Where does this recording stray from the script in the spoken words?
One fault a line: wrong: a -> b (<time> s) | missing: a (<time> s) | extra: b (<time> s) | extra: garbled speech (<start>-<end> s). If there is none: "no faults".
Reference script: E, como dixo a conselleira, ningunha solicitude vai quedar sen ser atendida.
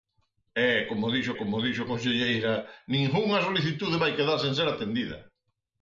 extra: como dixo (1.4 s)